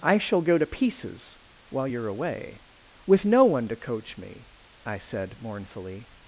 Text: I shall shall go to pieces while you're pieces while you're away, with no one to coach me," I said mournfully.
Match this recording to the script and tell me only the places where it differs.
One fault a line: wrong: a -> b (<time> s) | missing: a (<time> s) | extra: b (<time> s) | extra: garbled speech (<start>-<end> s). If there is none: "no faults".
missing: shall (0.4 s)
missing: pieces while you're (2.1 s)